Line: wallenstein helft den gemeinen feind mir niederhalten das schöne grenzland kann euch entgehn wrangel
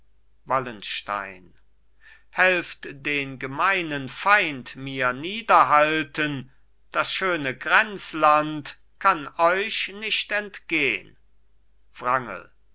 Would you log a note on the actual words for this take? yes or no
yes